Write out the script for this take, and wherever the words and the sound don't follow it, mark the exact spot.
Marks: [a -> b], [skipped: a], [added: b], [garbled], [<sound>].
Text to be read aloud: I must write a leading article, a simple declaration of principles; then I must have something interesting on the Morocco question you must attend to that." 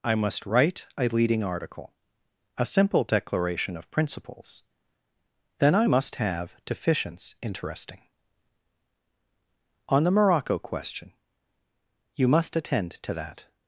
I must write a leading article, a simple declaration of principles; then I must have [something -> deficients] interesting on the Morocco question you must attend to that."